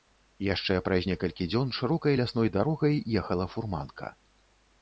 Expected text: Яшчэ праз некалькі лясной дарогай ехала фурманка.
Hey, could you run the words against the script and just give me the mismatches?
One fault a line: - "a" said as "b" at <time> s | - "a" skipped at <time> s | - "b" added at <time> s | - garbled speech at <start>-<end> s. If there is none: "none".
- "дзён шырокай" added at 1.5 s